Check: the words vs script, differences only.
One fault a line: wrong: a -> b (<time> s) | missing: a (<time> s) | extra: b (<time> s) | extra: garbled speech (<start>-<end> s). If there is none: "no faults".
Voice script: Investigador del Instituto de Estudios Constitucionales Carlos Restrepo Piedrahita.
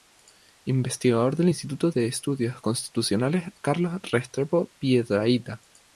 no faults